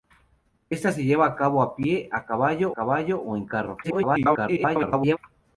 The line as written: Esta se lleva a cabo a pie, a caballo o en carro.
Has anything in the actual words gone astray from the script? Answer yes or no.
yes